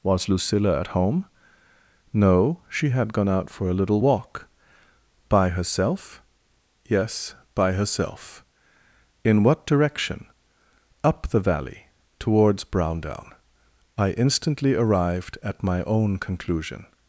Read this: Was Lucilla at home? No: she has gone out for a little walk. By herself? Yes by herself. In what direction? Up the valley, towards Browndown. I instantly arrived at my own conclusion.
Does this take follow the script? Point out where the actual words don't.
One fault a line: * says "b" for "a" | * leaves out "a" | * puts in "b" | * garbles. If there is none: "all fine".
* says "had" for "has"